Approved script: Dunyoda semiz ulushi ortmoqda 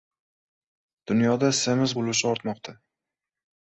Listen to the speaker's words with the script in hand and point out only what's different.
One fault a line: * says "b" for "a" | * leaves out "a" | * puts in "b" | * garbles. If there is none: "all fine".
all fine